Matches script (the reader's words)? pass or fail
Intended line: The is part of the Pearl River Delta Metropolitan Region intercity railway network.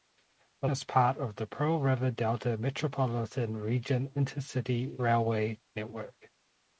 pass